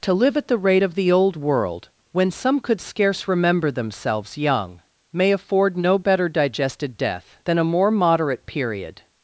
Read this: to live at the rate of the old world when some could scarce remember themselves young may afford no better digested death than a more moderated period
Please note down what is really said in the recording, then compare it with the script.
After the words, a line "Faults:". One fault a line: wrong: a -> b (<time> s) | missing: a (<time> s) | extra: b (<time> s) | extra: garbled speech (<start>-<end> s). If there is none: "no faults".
to live at the rate of the old world when some could scarce remember themselves young may afford no better digested death than a more moderate period
Faults:
wrong: moderated -> moderate (7.9 s)